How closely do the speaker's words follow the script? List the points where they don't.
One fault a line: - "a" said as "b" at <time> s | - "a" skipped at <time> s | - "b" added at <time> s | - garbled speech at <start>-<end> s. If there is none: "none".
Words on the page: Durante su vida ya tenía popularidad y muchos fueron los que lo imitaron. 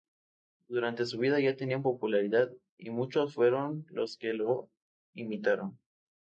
none